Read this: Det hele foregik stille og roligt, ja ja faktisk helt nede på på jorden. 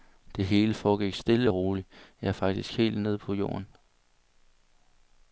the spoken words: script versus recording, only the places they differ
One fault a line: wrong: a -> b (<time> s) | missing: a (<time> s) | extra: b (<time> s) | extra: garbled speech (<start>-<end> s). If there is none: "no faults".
missing: ja (2.3 s)
missing: på (3.3 s)